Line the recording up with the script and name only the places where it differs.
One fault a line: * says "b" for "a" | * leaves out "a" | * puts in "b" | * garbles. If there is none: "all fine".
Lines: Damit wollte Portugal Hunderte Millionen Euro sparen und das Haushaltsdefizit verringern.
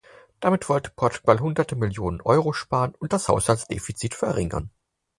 all fine